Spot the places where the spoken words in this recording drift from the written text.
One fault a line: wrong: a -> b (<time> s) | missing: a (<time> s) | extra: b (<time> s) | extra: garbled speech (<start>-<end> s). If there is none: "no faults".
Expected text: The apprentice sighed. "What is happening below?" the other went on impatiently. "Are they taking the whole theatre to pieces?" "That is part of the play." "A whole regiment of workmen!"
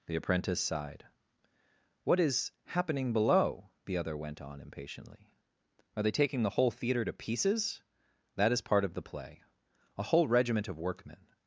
no faults